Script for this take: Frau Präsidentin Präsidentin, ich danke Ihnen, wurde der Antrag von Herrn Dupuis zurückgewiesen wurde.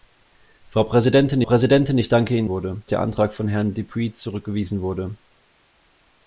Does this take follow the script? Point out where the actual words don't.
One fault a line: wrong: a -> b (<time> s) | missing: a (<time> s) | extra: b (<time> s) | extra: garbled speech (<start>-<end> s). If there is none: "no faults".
no faults